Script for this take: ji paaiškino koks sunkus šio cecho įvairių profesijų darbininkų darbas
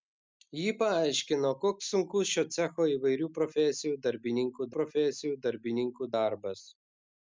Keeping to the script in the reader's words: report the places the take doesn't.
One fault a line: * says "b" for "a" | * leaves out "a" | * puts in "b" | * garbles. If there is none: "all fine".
* puts in "profesijų darbininkų"